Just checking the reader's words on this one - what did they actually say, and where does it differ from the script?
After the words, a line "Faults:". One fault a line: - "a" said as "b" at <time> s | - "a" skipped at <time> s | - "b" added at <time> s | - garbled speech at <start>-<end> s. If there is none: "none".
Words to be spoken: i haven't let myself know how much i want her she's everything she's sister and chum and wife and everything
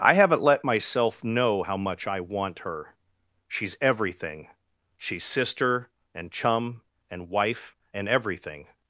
i haven't let myself know how much i want her she's everything she's sister and chum and wife and everything
Faults:
none